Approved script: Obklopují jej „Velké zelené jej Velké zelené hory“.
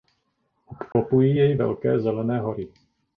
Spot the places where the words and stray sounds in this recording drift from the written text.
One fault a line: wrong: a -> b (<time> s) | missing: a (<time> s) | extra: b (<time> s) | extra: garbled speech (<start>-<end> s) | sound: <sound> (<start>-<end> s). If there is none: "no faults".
sound: dropout (0.9-1.0 s)
missing: jej Velké zelené (2.4 s)